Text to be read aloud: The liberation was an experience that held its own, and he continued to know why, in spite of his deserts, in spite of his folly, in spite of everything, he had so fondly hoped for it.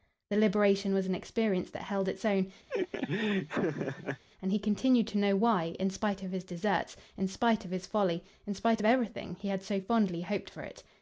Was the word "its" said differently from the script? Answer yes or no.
no